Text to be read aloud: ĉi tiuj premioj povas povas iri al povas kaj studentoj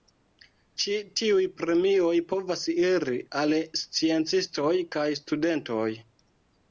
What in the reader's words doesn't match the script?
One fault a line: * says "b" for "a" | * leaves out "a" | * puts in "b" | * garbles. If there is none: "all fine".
* leaves out "povas"
* says "sciencistoj" for "povas"